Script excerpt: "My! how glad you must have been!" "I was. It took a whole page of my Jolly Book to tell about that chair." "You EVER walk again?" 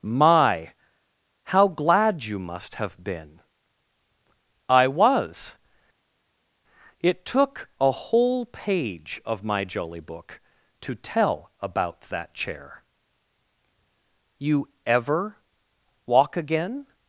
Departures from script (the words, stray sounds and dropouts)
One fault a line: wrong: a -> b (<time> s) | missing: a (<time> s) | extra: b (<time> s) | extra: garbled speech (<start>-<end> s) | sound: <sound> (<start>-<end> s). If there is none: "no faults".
no faults